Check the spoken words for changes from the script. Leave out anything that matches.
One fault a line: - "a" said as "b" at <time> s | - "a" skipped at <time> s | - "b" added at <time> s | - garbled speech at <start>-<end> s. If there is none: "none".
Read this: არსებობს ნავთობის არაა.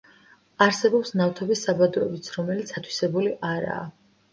- "საბადოებიც რომელიც ათვისებული" added at 1.7 s